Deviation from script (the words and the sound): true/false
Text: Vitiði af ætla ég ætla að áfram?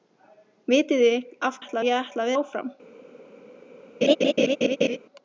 true